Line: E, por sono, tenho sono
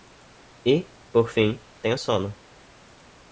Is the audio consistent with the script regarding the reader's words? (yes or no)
no